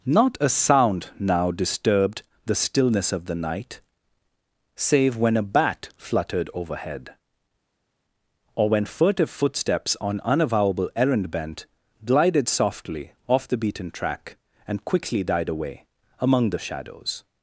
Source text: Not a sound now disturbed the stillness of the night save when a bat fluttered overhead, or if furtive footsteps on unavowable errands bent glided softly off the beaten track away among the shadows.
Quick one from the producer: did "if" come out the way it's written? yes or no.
no